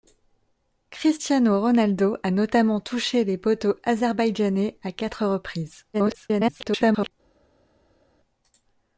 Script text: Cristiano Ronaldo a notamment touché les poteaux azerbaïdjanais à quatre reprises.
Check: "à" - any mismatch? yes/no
no